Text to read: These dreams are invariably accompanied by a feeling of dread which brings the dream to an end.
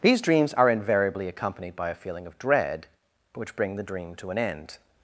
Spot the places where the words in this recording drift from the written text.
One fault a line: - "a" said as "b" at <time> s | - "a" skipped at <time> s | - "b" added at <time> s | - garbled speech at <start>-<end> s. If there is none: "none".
- "brings" said as "bring" at 3.6 s